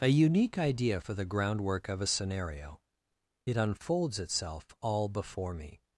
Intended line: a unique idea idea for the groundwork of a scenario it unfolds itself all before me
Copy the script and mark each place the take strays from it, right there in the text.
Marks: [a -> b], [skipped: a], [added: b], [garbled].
a unique idea [skipped: idea] for the groundwork of a scenario it unfolds itself all before me